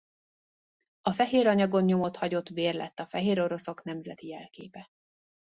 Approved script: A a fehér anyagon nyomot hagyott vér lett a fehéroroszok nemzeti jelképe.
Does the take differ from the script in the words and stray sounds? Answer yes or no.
yes